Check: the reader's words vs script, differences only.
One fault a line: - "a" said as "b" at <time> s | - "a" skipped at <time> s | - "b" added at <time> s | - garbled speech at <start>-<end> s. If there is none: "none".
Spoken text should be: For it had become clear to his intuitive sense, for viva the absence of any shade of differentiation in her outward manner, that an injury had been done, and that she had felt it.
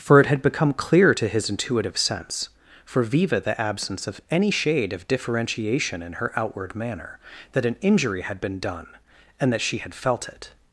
none